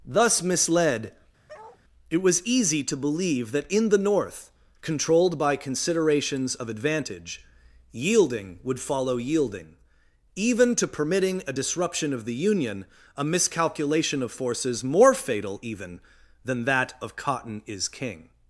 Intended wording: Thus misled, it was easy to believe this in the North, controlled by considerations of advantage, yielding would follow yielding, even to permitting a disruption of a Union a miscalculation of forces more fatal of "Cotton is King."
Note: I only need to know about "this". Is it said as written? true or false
false